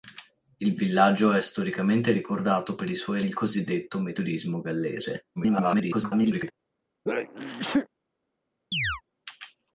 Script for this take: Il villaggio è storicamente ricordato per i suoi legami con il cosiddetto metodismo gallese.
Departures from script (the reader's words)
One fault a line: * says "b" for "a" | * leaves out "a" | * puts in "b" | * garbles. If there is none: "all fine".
* leaves out "legami con"
* garbles